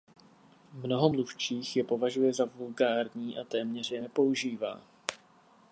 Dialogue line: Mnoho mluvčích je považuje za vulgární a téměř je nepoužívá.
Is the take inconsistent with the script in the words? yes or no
no